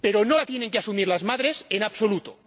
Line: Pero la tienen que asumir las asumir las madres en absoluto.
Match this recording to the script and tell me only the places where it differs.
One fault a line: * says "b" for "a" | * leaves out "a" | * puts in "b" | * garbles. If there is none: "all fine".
* puts in "no"
* leaves out "asumir las"